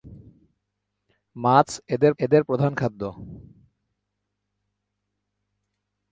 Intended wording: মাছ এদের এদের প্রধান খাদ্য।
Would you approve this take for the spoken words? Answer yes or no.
yes